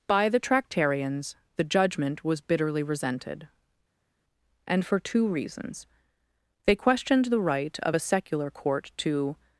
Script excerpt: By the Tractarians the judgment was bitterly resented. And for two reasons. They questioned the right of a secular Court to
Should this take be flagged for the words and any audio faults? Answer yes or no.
no